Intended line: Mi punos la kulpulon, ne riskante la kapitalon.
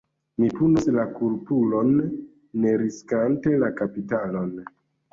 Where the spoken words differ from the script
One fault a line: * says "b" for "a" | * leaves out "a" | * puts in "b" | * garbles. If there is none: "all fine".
all fine